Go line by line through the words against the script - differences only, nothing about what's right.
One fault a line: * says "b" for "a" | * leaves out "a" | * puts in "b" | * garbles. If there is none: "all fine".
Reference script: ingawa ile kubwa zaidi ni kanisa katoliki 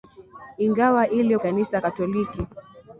* leaves out "kubwa zaidi ni"